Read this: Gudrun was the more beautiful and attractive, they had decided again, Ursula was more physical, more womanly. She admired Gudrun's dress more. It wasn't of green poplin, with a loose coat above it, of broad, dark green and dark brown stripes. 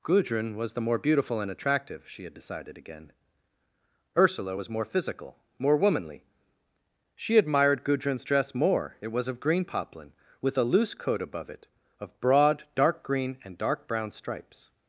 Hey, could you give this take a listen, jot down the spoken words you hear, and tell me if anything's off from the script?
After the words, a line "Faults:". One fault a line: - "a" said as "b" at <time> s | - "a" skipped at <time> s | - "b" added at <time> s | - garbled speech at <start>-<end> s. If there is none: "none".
Gudrun was the more beautiful and attractive, she had decided again, Ursula was more physical, more womanly. She admired Gudrun's dress more. It was of green poplin, with a loose coat above it, of broad, dark green and dark brown stripes.
Faults:
- "they" said as "she" at 2.1 s
- "wasn't" said as "was" at 9.1 s